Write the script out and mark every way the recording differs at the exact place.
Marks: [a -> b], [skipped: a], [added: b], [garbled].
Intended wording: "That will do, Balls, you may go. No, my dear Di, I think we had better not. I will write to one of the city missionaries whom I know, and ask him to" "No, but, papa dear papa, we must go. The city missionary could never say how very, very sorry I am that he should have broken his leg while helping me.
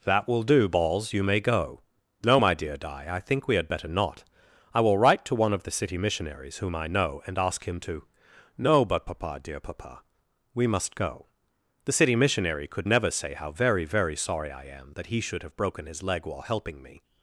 "That will do, Balls, you may go. No, my dear Di, I think we had better not. I will write to one of the city missionaries whom I know, and ask him to" "No, but, papa dear papa, we must go. The city missionary could never say how very, very sorry I am that he should have broken his leg while helping me.